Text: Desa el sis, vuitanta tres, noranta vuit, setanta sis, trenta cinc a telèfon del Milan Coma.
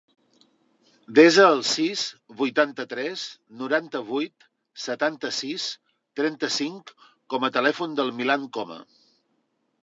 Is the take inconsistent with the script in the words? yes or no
yes